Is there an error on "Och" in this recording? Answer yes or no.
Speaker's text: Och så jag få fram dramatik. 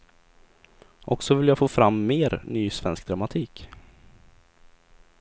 no